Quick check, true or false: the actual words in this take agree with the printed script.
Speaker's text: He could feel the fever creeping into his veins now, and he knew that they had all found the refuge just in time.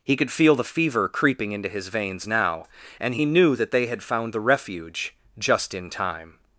false